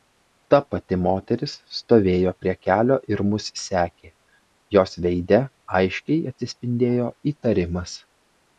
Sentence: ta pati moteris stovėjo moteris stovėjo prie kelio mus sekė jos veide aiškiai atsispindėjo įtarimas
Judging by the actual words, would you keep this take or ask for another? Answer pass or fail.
fail